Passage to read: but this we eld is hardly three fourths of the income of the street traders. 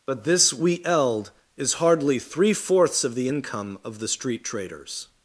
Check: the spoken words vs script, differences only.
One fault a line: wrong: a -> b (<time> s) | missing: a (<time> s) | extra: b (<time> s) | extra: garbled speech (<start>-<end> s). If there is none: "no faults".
no faults